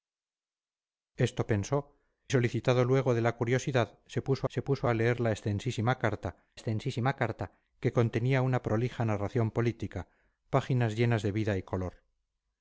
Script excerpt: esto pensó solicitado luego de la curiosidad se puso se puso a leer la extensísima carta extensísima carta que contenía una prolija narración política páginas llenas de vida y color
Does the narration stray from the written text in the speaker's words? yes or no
no